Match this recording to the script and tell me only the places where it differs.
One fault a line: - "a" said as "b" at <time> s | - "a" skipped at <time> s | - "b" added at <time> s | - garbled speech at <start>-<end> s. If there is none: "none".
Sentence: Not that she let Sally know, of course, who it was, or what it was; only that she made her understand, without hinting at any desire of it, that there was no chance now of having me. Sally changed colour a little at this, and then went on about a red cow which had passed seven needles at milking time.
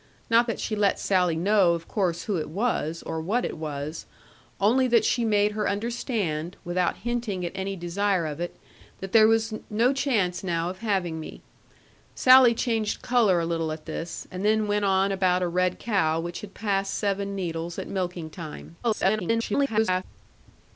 - garbled speech at 18.8-20.0 s